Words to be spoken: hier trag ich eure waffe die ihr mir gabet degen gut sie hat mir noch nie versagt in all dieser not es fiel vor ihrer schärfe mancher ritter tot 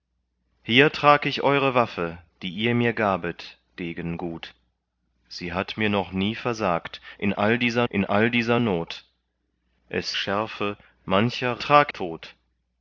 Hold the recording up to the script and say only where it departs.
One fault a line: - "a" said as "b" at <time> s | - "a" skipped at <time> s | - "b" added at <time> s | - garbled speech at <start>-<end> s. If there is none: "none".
- "not es fiel vor ihrer" said as "in all dieser not es" at 7.9 s
- "ritter" said as "trag" at 11.6 s